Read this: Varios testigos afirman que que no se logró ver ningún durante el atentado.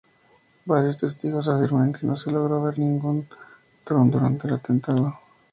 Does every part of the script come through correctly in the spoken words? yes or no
no